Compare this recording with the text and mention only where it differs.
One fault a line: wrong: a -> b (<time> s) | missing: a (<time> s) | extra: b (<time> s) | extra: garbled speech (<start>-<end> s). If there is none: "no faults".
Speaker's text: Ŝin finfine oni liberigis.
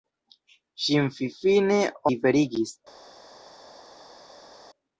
missing: oni (1.8 s)